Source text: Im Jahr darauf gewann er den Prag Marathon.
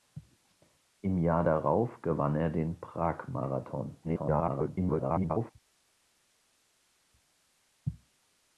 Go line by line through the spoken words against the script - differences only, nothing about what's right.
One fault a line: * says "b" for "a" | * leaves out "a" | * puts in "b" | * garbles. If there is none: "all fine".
* garbles